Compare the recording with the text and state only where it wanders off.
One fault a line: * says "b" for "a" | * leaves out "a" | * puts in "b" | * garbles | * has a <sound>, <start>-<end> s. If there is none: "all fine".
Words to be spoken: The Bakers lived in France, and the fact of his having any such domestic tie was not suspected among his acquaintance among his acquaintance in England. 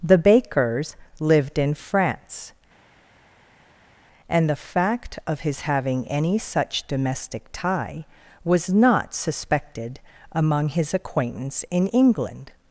* leaves out "among his acquaintance"